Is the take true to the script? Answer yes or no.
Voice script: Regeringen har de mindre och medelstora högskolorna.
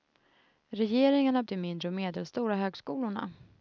yes